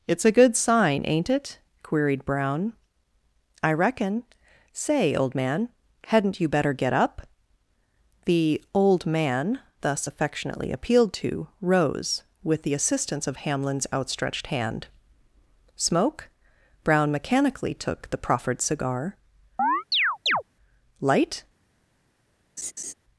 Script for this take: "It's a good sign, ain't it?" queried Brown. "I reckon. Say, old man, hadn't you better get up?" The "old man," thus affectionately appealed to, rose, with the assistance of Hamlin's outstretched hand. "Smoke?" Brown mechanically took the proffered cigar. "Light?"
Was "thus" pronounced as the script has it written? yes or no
yes